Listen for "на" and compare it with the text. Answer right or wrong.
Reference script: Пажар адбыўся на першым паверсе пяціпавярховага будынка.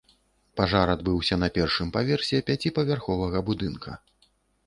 right